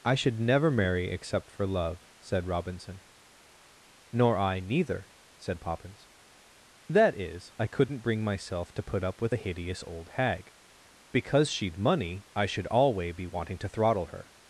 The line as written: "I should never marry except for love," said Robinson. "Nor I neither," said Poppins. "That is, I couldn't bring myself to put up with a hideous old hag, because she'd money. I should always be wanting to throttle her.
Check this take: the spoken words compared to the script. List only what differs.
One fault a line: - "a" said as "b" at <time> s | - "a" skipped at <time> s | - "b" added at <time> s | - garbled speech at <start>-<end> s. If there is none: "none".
- "always" said as "alway" at 12.7 s